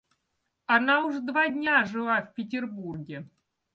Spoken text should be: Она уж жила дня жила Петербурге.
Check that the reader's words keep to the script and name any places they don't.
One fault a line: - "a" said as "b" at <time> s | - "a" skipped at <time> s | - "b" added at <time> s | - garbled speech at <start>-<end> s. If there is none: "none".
- "жила" said as "два" at 1.2 s
- "в" added at 2.2 s